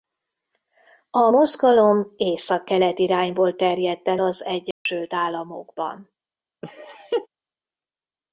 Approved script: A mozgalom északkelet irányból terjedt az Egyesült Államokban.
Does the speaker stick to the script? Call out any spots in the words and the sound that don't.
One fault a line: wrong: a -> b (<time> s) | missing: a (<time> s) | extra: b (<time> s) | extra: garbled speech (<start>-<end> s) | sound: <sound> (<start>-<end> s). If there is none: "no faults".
extra: el (4.1 s)
sound: dropout (4.7-4.9 s)
sound: laugh (6.6-7.3 s)